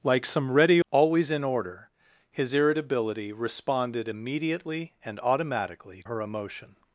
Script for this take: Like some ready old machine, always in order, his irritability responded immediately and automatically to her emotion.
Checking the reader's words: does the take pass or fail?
fail